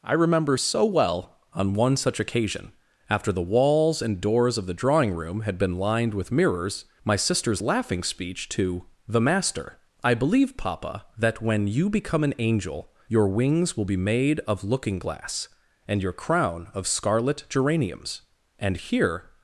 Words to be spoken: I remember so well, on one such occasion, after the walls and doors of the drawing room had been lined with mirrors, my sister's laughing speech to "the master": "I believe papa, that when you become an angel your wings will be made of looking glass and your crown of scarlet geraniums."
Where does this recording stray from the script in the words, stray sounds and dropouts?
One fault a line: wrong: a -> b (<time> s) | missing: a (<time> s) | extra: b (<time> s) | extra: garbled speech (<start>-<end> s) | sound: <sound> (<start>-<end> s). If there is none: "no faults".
extra: And here (18.6 s)